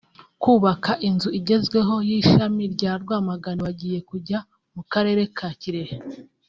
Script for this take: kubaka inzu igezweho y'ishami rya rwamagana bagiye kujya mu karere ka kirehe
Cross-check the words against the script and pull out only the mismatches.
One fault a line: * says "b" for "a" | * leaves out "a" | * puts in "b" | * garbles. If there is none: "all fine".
all fine